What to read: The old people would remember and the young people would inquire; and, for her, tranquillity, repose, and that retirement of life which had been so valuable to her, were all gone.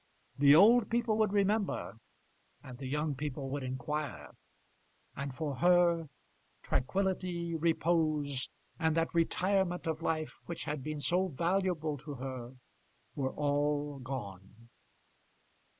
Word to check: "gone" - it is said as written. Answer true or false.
true